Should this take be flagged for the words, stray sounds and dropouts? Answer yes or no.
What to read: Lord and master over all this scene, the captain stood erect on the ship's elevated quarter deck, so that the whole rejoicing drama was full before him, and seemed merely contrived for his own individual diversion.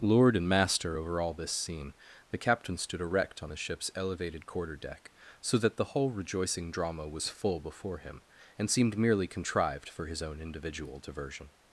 no